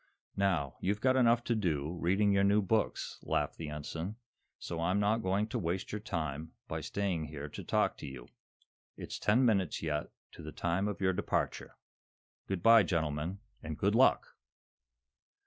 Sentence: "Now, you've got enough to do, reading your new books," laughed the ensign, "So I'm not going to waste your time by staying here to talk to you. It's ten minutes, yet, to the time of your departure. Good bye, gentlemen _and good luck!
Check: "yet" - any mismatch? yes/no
no